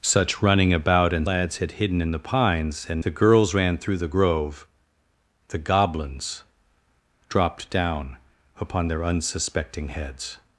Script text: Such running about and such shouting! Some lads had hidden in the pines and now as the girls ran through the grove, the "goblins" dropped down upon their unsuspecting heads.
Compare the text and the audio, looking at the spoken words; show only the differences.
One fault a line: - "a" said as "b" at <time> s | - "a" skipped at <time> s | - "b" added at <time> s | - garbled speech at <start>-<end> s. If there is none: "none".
- "such shouting Some" skipped at 1.3 s
- "now as" skipped at 3.0 s